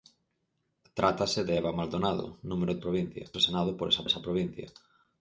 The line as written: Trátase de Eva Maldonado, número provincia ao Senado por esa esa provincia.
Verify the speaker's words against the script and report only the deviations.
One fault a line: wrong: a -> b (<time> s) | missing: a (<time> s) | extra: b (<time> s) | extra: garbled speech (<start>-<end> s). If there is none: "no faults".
no faults